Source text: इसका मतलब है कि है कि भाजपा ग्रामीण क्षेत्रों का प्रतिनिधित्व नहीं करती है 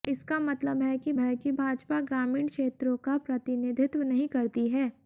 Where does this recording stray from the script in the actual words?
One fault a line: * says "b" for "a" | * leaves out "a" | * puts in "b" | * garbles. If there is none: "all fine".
all fine